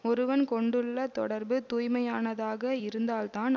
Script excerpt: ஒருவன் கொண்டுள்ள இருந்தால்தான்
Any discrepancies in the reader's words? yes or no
yes